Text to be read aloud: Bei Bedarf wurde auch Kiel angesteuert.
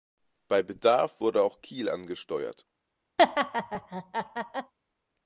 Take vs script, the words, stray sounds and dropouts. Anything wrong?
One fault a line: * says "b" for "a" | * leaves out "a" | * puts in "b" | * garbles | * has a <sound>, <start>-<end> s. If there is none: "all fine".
* has a laugh, 3.2-4.7 s